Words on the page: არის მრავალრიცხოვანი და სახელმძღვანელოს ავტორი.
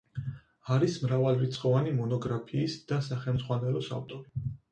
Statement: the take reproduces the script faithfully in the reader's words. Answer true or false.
false